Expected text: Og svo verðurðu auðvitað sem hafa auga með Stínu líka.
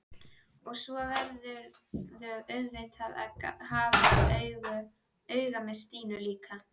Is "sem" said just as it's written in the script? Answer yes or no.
no